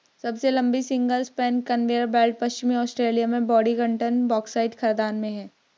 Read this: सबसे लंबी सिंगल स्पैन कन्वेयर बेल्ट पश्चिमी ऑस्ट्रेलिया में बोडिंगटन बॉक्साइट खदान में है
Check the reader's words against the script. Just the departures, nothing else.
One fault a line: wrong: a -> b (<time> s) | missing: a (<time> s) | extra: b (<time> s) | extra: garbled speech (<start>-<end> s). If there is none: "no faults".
no faults